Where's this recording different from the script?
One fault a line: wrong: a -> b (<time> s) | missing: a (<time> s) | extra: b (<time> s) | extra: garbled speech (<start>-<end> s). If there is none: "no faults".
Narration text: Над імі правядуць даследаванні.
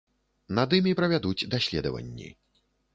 no faults